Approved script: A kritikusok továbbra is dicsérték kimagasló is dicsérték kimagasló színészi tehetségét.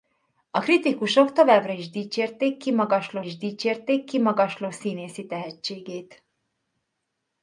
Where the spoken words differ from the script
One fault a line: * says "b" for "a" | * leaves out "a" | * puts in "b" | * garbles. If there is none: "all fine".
all fine